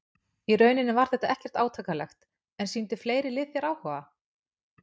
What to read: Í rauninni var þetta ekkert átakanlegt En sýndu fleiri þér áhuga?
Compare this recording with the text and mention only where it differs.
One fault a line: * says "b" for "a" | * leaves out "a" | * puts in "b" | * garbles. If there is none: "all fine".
* puts in "lið"